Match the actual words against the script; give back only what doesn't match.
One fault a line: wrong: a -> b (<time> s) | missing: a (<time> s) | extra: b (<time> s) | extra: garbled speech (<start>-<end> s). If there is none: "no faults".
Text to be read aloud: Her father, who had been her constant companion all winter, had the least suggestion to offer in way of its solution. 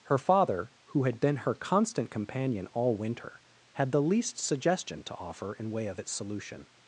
no faults